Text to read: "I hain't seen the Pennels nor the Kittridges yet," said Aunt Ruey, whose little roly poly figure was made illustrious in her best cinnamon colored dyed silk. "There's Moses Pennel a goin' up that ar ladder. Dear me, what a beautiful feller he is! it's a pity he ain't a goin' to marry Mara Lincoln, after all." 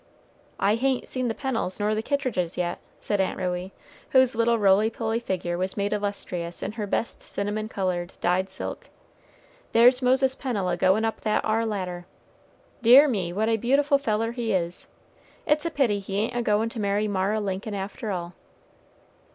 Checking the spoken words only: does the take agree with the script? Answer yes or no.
yes